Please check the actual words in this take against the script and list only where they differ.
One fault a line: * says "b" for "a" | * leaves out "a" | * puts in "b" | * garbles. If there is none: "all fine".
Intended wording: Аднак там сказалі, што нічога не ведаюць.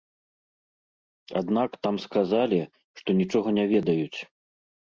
all fine